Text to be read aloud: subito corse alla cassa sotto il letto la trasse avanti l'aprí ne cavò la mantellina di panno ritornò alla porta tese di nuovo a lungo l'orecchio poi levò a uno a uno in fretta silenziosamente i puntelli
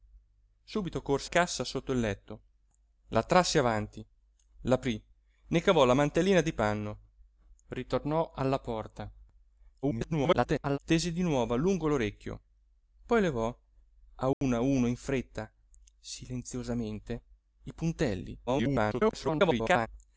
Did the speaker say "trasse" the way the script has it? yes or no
yes